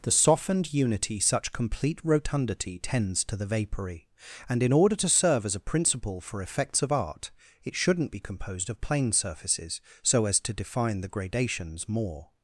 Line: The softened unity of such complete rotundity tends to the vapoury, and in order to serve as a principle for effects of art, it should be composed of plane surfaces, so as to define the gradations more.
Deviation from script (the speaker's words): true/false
true